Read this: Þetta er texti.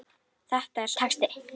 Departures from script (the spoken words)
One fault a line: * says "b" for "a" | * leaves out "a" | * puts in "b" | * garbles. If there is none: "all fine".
all fine